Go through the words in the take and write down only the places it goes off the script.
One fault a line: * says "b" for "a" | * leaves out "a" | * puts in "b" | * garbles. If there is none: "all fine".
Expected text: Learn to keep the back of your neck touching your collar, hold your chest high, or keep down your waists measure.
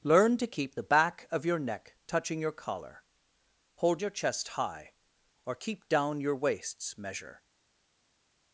all fine